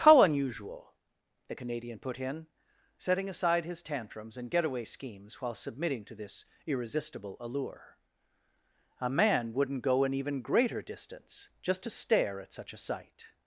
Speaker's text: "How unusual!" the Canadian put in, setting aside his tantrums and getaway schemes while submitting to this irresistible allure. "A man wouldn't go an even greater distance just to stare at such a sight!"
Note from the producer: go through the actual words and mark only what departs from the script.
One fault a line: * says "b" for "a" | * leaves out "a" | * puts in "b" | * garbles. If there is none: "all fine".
all fine